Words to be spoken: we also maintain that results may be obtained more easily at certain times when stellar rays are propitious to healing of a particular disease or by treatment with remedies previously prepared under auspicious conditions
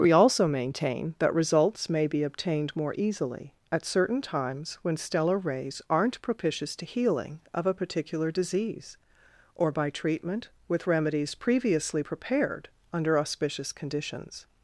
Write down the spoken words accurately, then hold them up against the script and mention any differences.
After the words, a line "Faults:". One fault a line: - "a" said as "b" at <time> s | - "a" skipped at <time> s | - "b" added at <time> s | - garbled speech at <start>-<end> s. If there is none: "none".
we also maintain that results may be obtained more easily at certain times when stellar rays aren't propitious to healing of a particular disease or by treatment with remedies previously prepared under auspicious conditions
Faults:
- "are" said as "aren't" at 5.9 s